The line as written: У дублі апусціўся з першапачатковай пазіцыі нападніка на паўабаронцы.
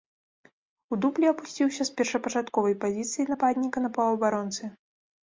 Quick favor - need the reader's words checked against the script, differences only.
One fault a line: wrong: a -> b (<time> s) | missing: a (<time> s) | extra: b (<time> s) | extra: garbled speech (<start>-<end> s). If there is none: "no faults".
no faults